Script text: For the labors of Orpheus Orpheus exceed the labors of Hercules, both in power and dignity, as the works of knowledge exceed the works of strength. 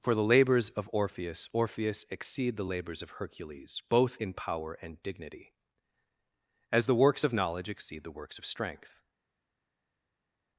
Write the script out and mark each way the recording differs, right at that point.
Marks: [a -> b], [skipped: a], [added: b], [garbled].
For the labors of Orpheus Orpheus exceed the labors of Hercules, both in power and dignity, as the works of knowledge exceed the works of strength.